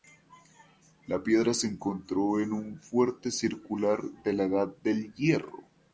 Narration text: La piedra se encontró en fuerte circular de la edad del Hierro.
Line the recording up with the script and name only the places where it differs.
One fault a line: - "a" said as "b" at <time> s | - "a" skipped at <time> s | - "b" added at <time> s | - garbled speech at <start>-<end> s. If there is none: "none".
- "un" added at 2.5 s